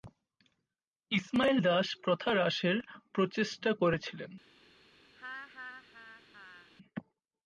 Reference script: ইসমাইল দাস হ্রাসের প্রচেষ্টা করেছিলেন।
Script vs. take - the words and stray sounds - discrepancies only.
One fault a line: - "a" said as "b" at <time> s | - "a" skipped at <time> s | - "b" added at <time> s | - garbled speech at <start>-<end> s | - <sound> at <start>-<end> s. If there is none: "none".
- "প্রথা" added at 2.0 s
- laugh at 5.2-6.7 s